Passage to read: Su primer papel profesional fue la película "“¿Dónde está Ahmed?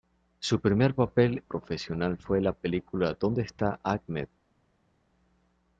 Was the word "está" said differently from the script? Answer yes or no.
no